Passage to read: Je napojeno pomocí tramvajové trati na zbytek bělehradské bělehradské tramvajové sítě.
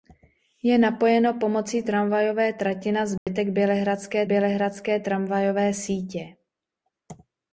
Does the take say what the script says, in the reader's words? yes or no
yes